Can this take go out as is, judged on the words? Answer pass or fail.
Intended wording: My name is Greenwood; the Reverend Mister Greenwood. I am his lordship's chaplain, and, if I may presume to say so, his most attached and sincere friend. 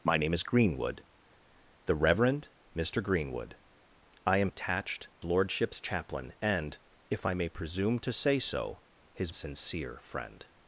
fail